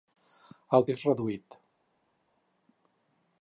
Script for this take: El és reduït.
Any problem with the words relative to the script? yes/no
no